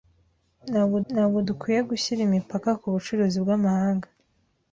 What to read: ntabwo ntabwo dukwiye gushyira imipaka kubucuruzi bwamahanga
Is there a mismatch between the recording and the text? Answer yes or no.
no